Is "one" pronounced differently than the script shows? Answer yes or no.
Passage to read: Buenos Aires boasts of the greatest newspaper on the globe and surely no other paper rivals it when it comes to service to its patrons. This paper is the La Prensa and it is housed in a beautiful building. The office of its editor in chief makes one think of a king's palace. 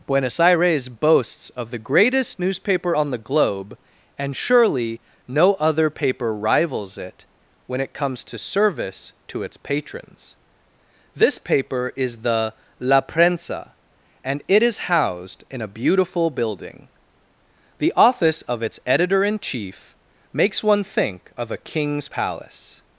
no